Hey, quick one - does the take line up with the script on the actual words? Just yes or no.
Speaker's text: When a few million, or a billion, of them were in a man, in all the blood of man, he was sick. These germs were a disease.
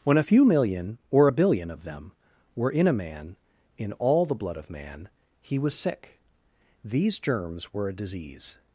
yes